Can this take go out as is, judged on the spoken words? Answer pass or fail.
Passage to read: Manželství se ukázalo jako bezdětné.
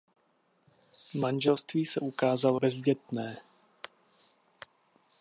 fail